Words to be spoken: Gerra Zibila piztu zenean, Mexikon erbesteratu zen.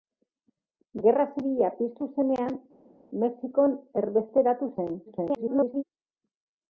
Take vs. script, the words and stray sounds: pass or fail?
fail